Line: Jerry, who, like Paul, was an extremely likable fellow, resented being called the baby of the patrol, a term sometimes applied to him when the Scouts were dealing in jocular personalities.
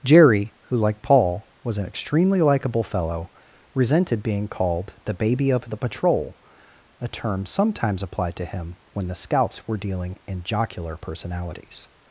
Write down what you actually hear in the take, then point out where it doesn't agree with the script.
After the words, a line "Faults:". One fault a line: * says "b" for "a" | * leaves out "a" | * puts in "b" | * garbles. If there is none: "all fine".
Jerry, who, like Paul, was an extremely likable fellow, resented being called the baby of the patrol, a term sometimes applied to him when the Scouts were dealing in jocular personalities.
Faults:
all fine